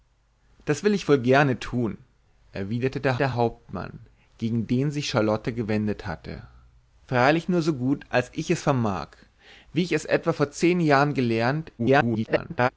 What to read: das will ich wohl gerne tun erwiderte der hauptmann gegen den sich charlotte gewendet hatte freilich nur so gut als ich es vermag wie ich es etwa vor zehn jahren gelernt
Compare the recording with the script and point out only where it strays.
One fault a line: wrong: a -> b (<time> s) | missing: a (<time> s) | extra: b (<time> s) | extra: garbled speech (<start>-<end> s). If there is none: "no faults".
extra: der (3.1 s)
extra: garbled speech (11.8-12.7 s)